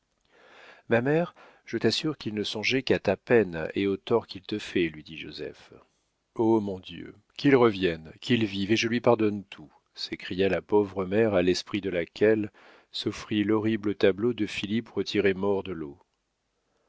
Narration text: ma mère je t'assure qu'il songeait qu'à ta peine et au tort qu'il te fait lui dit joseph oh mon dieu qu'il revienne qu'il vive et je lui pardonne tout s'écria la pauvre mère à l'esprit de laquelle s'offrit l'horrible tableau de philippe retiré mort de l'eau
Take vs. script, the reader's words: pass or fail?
fail